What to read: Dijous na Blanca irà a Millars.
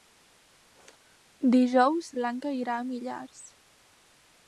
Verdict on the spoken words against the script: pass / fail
fail